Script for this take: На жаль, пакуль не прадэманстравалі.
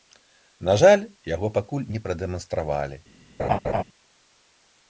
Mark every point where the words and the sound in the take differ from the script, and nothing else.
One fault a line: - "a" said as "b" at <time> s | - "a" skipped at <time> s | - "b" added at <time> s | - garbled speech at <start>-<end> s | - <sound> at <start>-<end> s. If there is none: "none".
- "яго" added at 1.3 s
- laugh at 3.4-3.8 s